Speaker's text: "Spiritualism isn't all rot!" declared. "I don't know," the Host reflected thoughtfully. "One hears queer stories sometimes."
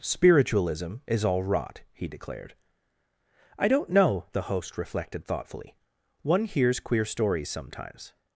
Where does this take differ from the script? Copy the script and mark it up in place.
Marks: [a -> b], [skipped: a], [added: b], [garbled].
"Spiritualism [isn't -> is] all rot!" [added: he] declared. "I don't know," the Host reflected thoughtfully. "One hears queer stories sometimes."